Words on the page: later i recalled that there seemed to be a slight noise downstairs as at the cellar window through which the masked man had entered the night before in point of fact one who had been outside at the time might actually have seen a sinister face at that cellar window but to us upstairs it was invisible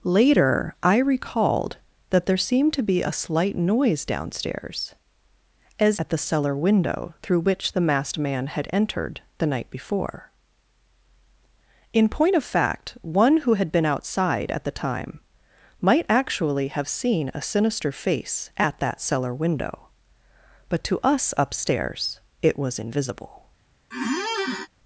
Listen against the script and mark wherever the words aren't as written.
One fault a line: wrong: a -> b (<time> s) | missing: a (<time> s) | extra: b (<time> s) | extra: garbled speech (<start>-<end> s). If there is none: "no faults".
no faults